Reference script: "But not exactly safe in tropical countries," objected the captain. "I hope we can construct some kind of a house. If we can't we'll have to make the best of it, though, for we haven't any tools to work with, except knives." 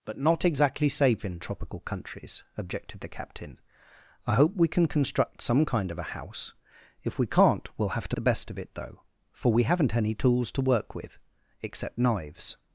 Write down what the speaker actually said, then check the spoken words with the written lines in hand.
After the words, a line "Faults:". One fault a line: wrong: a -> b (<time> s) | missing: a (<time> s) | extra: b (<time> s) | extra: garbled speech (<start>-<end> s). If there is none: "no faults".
"But not exactly safe in tropical countries," objected the captain. "I hope we can construct some kind of a house. If we can't we'll have to the best of it, though, for we haven't any tools to work with, except knives."
Faults:
missing: make (8.2 s)